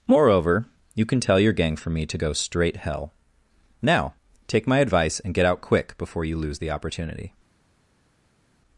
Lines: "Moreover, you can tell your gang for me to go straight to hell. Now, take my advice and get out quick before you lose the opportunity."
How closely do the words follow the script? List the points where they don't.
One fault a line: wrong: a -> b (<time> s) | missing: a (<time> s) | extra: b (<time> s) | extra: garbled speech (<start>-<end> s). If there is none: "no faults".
missing: to (2.8 s)